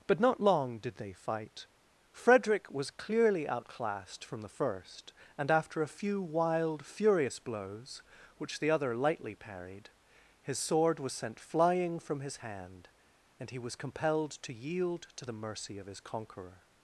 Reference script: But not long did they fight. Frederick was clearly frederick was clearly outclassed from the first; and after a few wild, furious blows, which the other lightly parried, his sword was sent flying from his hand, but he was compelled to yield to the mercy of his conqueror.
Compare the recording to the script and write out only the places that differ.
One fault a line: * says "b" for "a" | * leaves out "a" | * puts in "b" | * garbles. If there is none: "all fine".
* leaves out "frederick was clearly"
* says "and" for "but"